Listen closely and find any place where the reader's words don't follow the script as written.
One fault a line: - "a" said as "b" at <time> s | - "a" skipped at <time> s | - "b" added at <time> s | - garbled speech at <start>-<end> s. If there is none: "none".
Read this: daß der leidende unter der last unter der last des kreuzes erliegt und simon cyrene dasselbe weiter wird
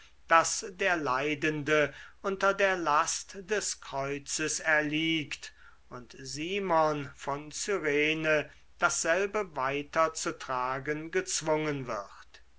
- "unter der last" skipped at 3.4 s
- "von" added at 7.2 s
- "zu tragen gezwungen" added at 10.1 s